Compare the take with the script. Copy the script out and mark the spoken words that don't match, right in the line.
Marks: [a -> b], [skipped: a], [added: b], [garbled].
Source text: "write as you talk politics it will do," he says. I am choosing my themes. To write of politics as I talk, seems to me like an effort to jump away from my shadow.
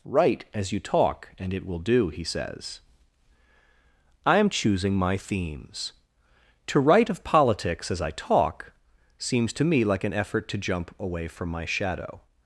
"write as you talk [politics -> and] it will do," he says. I am choosing my themes. To write of politics as I talk, seems to me like an effort to jump away from my shadow.